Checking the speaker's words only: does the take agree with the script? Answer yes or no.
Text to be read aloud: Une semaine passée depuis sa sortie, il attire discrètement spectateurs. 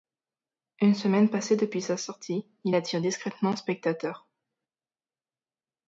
yes